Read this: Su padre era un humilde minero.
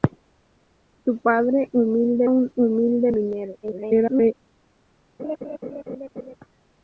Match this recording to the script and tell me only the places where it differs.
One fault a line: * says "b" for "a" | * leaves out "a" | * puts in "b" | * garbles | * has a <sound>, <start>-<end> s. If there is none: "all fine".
* says "humilde" for "era"
* garbles
* has a laugh, 5.2-6.4 s